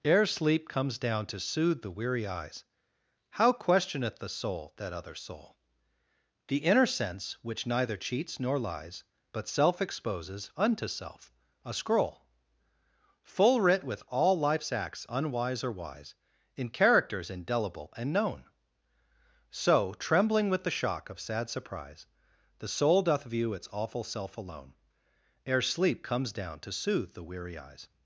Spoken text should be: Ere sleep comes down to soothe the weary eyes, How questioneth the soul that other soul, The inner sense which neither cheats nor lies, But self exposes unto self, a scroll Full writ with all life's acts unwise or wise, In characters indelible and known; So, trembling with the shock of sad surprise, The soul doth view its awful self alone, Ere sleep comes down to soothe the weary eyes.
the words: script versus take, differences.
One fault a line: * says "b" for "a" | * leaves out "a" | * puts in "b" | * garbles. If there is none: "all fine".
all fine